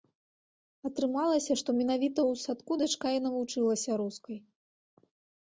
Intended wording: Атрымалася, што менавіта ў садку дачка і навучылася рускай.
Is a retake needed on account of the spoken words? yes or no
no